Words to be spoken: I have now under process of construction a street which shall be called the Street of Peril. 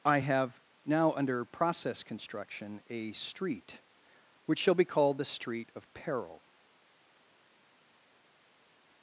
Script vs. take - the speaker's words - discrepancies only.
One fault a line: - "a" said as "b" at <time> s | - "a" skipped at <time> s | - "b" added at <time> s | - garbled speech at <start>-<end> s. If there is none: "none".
- "of" skipped at 2.0 s